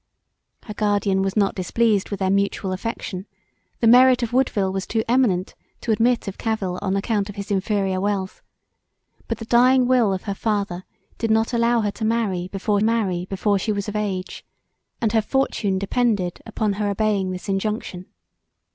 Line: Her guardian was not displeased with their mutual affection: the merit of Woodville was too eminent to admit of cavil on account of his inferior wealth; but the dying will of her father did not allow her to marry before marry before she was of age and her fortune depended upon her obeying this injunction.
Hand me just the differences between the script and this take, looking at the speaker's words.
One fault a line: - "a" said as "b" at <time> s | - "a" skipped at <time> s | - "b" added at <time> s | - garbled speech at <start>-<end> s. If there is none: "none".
none